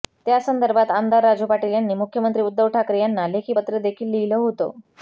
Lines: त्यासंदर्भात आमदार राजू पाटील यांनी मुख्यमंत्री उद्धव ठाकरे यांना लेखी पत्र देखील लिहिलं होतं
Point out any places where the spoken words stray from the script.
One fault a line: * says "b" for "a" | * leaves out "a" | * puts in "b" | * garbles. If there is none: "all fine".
all fine